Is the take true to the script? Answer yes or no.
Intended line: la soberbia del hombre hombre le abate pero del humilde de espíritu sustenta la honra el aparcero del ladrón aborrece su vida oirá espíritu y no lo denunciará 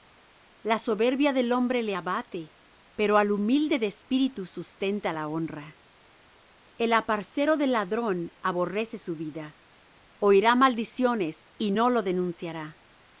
no